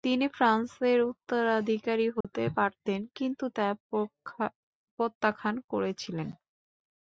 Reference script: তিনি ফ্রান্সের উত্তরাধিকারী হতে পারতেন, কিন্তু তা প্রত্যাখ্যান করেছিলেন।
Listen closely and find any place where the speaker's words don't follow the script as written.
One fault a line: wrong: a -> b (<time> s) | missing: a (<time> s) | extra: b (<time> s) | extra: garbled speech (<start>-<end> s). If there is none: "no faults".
no faults